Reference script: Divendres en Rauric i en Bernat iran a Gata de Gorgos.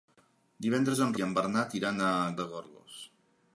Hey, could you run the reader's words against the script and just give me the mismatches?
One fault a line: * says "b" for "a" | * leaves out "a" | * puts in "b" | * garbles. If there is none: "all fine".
* leaves out "Rauric"
* leaves out "Gata"